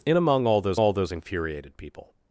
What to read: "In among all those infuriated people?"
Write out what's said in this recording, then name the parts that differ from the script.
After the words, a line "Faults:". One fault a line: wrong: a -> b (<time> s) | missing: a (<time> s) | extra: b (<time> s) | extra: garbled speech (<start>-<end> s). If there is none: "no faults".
"In among all those all those infuriated people?"
Faults:
extra: all those (0.8 s)